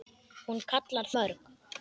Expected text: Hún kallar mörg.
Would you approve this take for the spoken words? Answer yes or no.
yes